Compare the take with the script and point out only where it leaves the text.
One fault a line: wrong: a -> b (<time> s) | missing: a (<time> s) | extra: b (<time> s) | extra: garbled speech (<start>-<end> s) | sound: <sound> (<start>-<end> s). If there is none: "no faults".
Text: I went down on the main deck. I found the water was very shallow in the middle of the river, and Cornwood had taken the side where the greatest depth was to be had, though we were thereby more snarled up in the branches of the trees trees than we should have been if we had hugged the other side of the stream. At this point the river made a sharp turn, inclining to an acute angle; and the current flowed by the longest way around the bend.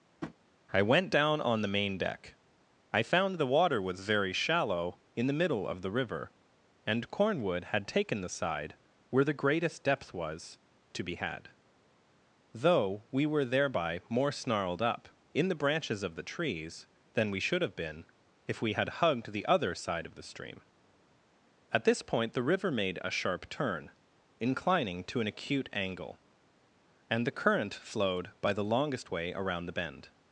sound: tap (0.2-0.4 s)
missing: trees (16.9 s)